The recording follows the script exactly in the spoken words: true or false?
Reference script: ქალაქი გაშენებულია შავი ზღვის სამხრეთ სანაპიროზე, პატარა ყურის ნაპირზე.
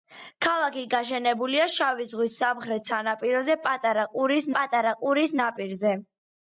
false